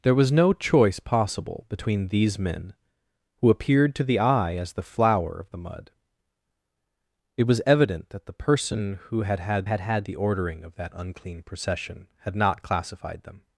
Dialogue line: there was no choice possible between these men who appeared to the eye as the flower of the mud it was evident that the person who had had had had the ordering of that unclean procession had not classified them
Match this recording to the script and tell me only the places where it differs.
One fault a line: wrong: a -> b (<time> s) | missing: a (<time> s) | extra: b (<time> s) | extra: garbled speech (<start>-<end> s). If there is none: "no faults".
no faults